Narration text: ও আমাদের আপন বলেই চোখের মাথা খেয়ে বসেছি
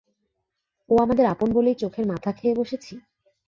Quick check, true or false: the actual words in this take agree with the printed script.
true